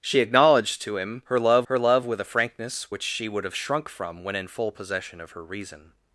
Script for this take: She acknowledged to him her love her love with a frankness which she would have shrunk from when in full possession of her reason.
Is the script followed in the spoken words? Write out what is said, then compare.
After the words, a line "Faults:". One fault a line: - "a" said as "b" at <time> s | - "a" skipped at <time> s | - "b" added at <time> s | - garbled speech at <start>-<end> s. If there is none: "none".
She acknowledged to him her love her love with a frankness which she would have shrunk from when in full possession of her reason.
Faults:
none